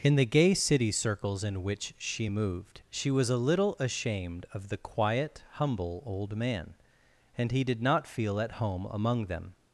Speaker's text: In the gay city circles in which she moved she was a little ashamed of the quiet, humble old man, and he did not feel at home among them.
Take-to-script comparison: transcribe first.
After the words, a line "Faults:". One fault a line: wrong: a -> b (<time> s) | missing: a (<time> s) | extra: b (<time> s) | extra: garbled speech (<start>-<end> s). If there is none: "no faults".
In the gay city circles in which she moved she was a little ashamed of the quiet, humble old man, and he did not feel at home among them.
Faults:
no faults